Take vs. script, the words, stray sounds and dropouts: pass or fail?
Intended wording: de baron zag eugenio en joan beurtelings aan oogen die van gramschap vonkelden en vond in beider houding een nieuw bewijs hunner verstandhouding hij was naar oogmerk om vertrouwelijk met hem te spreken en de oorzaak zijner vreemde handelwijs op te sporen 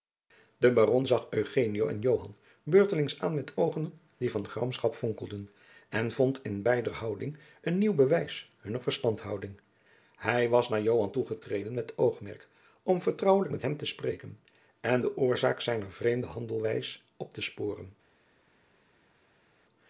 fail